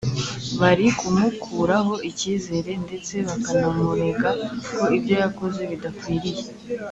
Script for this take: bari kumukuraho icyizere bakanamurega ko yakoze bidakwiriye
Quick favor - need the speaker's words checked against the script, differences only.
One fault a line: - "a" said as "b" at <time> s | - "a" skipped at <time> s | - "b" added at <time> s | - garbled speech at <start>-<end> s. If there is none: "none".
- "ndetse" added at 2.8 s
- "ibyo" added at 5.0 s